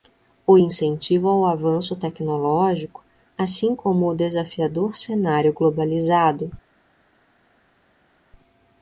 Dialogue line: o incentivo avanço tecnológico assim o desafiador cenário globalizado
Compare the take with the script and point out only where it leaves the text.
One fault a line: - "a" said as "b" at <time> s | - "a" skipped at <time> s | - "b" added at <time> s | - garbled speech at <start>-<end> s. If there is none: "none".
- "ao" added at 1.3 s
- "como" added at 3.7 s